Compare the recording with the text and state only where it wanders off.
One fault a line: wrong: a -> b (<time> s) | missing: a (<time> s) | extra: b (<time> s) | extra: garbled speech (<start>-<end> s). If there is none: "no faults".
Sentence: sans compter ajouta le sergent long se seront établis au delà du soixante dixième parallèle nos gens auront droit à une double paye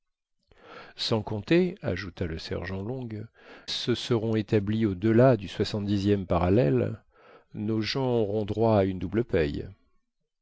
no faults